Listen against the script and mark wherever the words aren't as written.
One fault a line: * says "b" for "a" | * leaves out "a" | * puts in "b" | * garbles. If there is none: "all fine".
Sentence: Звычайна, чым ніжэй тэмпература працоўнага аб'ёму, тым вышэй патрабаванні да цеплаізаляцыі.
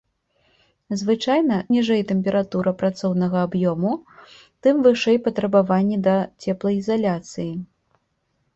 * leaves out "чым"